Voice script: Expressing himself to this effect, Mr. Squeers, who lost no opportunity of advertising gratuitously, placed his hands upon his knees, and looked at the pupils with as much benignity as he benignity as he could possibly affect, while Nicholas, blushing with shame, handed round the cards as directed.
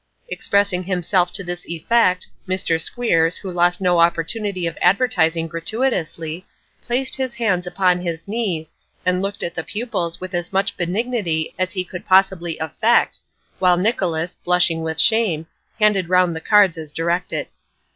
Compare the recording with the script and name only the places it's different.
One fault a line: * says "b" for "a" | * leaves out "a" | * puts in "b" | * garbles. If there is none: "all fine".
* leaves out "benignity as he"